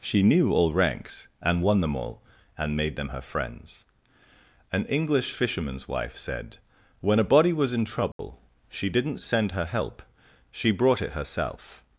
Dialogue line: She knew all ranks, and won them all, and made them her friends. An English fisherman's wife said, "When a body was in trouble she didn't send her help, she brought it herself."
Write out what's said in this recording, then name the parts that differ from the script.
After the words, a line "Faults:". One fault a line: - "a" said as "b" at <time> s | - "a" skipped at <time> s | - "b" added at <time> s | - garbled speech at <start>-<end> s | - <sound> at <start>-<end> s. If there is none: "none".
She knew all ranks, and won them all, and made them her friends. An English fisherman's wife said, "When a body was in trouble she didn't send her help, she brought it herself."
Faults:
- dropout at 8.1-8.2 s